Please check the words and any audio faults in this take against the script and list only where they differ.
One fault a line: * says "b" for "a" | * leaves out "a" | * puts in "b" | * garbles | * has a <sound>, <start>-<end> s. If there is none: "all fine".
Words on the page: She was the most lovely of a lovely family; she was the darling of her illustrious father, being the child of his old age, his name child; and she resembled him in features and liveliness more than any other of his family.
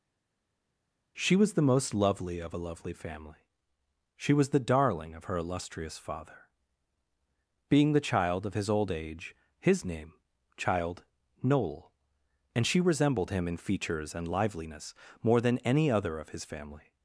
* puts in "noel"